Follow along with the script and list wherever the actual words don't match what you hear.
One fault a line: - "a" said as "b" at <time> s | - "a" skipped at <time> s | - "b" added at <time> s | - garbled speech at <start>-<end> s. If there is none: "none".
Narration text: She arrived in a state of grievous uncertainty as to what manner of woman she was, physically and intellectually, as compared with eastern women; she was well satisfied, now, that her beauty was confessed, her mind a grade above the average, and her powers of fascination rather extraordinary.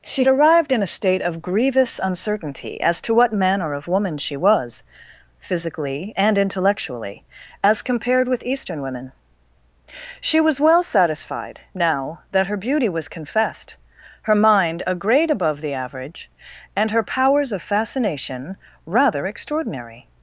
none